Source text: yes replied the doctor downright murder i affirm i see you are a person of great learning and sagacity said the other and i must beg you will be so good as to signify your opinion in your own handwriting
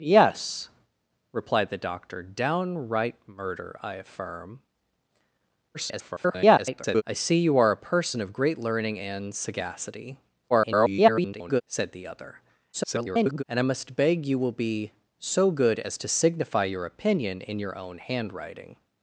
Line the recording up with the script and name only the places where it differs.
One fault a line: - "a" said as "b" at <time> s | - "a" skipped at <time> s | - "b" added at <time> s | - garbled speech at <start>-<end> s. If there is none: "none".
- garbled speech at 5.7-7.0 s
- garbled speech at 10.5-11.6 s
- garbled speech at 12.7-13.4 s